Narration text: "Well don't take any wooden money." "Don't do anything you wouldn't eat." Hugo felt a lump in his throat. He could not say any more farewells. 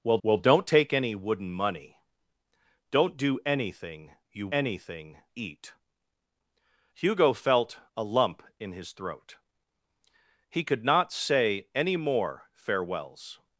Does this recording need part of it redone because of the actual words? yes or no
yes